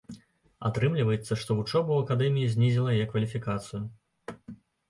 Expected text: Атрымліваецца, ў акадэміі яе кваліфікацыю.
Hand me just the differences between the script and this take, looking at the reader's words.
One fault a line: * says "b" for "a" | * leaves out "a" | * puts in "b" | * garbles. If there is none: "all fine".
* puts in "што вучоба"
* puts in "знізіла"